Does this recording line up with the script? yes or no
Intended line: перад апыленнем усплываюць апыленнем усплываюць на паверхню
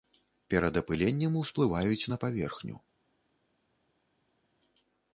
no